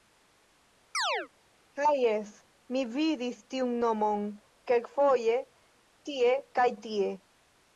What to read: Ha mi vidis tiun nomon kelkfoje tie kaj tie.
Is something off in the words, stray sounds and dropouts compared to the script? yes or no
yes